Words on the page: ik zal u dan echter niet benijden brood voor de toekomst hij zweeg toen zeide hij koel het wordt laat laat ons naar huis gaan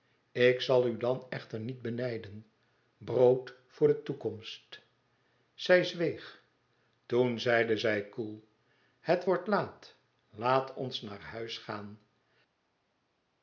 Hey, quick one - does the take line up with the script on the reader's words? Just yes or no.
no